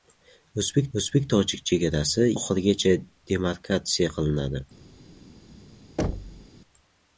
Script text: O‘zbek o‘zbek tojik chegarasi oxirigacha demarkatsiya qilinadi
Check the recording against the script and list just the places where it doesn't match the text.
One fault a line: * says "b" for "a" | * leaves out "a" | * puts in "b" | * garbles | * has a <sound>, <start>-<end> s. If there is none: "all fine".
* has a thud, 6.0-6.5 s